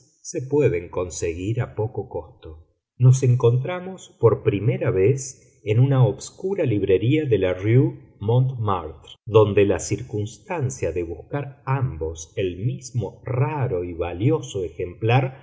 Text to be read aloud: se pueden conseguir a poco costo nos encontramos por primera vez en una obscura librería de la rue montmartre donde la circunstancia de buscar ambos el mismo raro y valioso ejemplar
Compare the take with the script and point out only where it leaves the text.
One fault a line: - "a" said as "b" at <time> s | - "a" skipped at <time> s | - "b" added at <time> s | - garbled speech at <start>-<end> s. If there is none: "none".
none